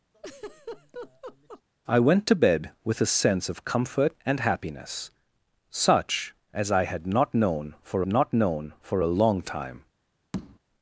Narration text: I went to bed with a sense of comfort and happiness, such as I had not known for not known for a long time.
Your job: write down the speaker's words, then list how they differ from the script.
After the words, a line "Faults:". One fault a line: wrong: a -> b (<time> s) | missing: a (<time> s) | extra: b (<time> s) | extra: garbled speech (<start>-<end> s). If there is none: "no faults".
I went to bed with a sense of comfort and happiness, such as I had not known for not known for a long time.
Faults:
no faults